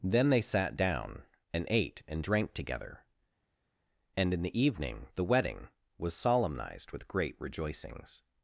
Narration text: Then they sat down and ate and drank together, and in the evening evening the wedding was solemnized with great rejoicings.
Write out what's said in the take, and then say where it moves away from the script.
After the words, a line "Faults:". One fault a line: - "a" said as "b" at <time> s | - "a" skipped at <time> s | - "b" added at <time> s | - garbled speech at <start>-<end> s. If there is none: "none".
Then they sat down and ate and drank together, and in the evening the wedding was solemnized with great rejoicings.
Faults:
- "evening" skipped at 5.1 s